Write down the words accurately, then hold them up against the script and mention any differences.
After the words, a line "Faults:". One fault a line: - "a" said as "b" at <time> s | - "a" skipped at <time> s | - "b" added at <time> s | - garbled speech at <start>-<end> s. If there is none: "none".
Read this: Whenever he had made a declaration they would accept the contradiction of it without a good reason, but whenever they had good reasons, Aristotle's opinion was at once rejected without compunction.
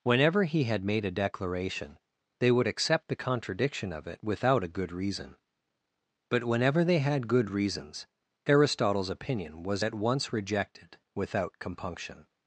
Whenever he had made a declaration they would accept the contradiction of it without a good reason, but whenever they had good reasons, Aristotle's opinion was at once rejected without compunction.
Faults:
none